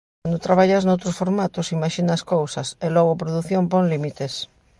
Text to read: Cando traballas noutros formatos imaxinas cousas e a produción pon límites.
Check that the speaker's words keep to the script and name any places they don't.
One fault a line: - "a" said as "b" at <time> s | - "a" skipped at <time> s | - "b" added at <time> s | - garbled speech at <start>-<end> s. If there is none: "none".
- "logo" added at 3.0 s